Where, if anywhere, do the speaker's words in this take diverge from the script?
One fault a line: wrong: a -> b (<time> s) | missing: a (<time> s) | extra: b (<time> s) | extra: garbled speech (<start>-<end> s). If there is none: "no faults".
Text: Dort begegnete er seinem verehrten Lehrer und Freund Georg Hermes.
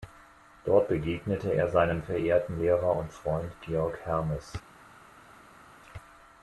no faults